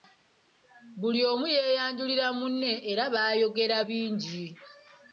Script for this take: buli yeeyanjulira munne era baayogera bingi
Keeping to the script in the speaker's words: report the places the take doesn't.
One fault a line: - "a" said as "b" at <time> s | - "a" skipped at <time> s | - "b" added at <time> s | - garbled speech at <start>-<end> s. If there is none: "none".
- "omu" added at 1.3 s